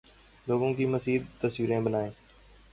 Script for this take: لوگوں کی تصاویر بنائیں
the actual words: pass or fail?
fail